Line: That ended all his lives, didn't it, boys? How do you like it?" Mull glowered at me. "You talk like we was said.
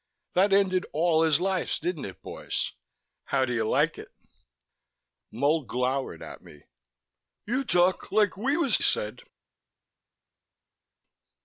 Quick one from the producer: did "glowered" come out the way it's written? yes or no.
yes